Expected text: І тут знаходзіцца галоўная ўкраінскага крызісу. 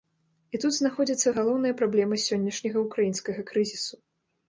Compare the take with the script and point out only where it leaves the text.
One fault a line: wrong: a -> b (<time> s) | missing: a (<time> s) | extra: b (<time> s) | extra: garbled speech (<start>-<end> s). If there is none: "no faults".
extra: праблема сённяшняга (1.8 s)